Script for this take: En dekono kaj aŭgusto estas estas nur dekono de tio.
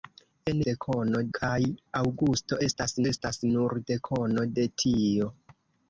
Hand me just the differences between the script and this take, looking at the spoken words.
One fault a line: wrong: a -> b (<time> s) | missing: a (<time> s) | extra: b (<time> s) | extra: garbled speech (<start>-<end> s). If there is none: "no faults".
no faults